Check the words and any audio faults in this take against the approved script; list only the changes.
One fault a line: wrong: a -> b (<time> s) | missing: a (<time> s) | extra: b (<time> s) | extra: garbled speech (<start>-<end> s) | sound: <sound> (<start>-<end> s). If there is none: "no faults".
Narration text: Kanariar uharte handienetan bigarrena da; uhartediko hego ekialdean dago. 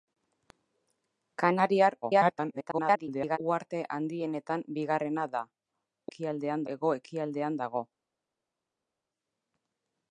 extra: garbled speech (2.0-3.4 s)
wrong: uhartediko -> ekialdean (6.1 s)